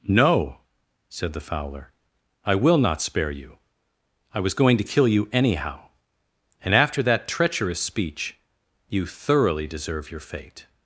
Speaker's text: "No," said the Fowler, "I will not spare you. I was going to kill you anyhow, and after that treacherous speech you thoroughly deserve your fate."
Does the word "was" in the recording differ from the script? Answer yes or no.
no